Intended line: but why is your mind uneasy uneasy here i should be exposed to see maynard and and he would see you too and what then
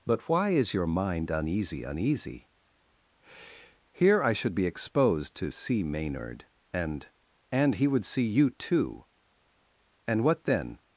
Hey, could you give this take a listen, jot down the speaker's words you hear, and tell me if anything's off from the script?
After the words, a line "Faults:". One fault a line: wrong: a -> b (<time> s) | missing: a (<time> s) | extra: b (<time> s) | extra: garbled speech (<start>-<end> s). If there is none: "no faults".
but why is your mind uneasy uneasy here i should be exposed to see maynard and and he would see you too and what then
Faults:
no faults